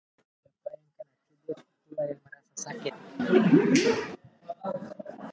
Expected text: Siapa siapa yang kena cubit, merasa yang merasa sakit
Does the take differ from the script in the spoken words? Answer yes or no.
yes